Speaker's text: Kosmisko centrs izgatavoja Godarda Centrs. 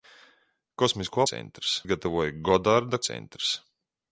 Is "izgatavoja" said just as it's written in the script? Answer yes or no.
yes